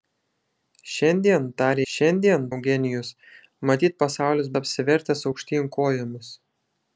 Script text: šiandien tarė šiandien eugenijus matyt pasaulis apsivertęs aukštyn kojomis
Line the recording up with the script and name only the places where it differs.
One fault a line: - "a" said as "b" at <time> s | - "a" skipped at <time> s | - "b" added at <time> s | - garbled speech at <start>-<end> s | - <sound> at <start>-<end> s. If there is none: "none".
none